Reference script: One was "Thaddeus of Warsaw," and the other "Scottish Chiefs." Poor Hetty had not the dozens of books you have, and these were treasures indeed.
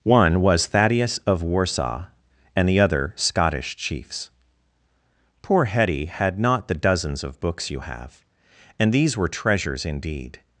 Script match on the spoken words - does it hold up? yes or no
yes